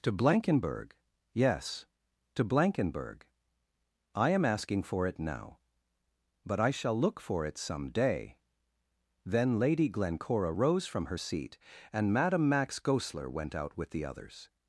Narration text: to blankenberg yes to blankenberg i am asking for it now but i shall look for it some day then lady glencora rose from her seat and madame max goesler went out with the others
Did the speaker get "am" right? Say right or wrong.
right